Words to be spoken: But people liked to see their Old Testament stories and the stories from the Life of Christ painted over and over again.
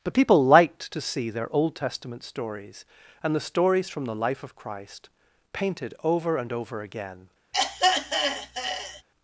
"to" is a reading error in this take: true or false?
false